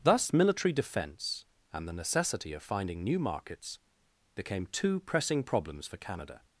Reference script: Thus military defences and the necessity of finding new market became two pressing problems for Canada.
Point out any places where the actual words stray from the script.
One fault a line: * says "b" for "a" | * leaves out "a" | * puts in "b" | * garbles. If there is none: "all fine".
* says "defence" for "defences"
* says "markets" for "market"